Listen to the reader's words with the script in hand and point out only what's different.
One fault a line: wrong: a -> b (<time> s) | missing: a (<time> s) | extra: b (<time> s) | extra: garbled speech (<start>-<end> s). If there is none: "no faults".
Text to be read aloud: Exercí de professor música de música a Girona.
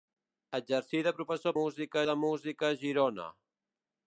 no faults